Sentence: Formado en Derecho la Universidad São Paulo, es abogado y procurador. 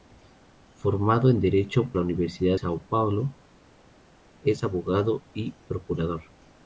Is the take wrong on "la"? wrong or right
right